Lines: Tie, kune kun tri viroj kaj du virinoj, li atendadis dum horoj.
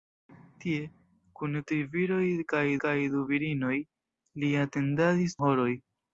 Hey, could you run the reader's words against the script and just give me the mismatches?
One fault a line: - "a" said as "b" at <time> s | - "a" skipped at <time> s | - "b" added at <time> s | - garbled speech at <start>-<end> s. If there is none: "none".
- "kun" skipped at 1.6 s
- "kaj" added at 2.9 s
- "dum" skipped at 5.4 s